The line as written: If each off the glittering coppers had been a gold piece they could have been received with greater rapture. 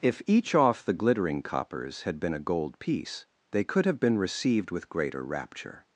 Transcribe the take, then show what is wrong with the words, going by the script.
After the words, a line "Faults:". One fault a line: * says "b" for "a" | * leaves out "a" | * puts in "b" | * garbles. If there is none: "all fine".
If each off the glittering coppers had been a gold piece they could have been received with greater rapture.
Faults:
all fine